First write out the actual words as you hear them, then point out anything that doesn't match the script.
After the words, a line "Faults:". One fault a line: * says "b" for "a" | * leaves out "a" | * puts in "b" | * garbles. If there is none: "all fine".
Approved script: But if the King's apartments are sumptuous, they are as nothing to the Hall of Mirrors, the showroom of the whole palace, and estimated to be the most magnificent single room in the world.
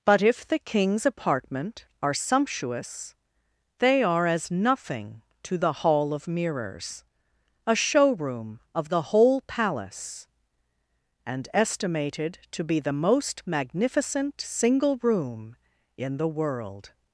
But if the King's apartment are sumptuous, they are as nothing to the Hall of Mirrors, a showroom of the whole palace, and estimated to be the most magnificent single room in the world.
Faults:
* says "apartment" for "apartments"
* says "a" for "the"